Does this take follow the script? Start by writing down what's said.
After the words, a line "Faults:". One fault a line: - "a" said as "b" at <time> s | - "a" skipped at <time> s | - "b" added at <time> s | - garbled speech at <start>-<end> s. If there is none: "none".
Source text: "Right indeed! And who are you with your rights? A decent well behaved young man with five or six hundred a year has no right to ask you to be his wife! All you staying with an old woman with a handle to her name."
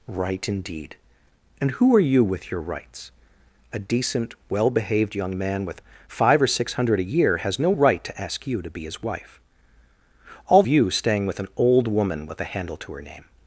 "Right indeed! And who are you with your rights? A decent well behaved young man with five or six hundred a year has no right to ask you to be his wife! All you staying with an old woman with a handle to her name."
Faults:
none